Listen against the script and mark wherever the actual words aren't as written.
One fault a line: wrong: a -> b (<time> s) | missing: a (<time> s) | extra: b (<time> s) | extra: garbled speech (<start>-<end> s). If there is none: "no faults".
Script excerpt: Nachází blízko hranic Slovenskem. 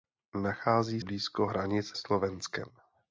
no faults